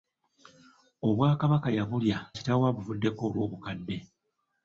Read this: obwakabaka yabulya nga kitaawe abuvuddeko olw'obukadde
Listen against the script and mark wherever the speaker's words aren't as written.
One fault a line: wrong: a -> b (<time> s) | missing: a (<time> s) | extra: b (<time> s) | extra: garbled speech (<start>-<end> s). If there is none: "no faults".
missing: nga (2.2 s)